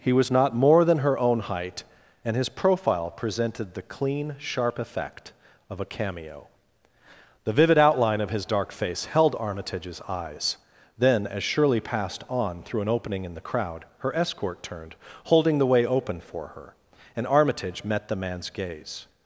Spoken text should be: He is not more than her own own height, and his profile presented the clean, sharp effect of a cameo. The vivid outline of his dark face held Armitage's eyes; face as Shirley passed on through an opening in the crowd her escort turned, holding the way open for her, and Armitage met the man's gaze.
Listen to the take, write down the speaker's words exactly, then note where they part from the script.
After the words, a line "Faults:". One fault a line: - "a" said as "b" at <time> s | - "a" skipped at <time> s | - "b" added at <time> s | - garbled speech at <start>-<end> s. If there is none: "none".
He was not more than her own height, and his profile presented the clean, sharp effect of a cameo. The vivid outline of his dark face held Armitage's eyes; then as Shirley passed on through an opening in the crowd her escort turned, holding the way open for her, and Armitage met the man's gaze.
Faults:
- "is" said as "was" at 0.1 s
- "own" skipped at 1.4 s
- "face" said as "then" at 11.0 s